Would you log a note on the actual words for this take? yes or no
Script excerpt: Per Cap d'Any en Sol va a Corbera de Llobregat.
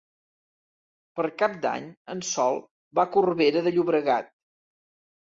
no